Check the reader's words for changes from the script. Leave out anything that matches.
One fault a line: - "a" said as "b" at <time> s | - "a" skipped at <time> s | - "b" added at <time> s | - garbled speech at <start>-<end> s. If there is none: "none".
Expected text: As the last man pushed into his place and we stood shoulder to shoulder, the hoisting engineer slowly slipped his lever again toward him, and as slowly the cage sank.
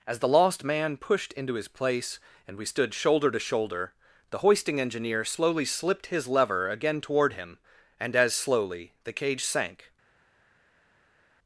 - "last" said as "lost" at 0.3 s